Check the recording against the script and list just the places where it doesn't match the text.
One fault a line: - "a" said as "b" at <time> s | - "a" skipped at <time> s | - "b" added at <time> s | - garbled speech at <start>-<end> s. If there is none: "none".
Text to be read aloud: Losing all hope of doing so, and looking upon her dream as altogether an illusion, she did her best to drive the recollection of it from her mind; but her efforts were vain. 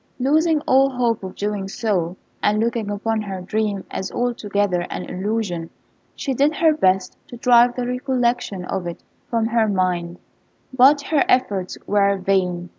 none